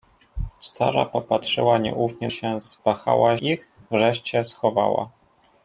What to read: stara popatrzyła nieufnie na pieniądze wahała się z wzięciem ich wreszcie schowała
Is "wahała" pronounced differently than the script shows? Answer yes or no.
yes